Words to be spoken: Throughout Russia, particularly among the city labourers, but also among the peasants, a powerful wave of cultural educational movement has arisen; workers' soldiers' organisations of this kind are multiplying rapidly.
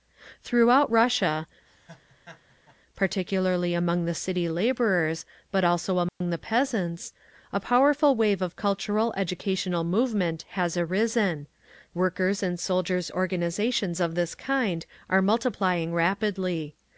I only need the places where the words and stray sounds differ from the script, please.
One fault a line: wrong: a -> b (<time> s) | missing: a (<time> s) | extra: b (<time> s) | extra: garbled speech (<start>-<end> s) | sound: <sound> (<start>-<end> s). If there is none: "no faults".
sound: laugh (1.7-2.8 s)
sound: dropout (6.1-6.2 s)
extra: and (12.4 s)